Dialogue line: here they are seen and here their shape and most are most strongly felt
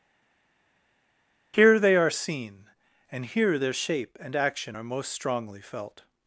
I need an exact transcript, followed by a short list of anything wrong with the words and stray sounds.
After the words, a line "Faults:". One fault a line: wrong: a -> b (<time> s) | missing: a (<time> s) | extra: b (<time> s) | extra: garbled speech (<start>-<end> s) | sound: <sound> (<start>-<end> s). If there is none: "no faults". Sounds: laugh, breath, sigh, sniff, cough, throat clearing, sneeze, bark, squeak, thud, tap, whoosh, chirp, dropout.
here they are seen and here their shape and action are most strongly felt
Faults:
wrong: most -> action (4.3 s)